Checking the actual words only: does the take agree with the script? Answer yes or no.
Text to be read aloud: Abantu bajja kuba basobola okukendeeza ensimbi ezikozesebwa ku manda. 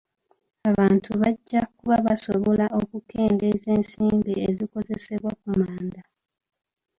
yes